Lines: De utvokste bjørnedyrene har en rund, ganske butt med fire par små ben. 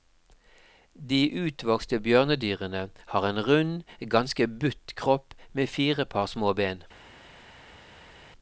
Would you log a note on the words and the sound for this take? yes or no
yes